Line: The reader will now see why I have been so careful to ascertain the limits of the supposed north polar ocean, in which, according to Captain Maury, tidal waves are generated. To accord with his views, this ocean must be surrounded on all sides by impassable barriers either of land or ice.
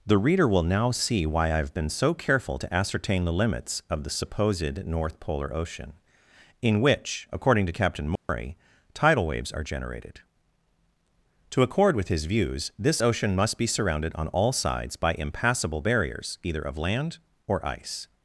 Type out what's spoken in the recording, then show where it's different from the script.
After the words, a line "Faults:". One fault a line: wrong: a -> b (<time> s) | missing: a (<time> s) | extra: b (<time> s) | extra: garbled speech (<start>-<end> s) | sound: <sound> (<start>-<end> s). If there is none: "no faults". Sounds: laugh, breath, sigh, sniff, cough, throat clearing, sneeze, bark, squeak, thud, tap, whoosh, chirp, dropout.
The reader will now see why I have been so careful to ascertain the limits of the supposed north polar ocean, in which, according to Captain Maury, tidal waves are generated. To accord with his views, this ocean must be surrounded on all sides by impassable barriers either of land or ice.
Faults:
sound: dropout (8.2-8.3 s)